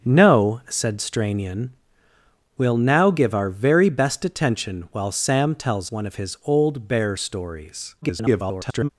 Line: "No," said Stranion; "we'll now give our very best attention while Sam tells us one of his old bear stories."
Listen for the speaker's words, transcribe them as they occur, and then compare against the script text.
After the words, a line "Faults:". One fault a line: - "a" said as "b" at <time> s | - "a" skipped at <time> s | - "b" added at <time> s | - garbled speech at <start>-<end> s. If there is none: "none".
"No," said Stranion; "we'll now give our very best attention while Sam tells one of his old bear stories." [garbled]
Faults:
- "us" skipped at 5.9 s
- garbled speech at 8.0-8.9 s